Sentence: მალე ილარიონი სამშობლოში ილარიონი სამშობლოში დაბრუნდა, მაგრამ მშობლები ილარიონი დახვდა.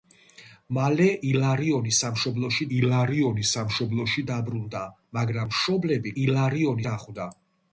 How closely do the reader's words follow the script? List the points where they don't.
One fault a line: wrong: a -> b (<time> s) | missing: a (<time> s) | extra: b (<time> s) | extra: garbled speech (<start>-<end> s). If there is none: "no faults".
no faults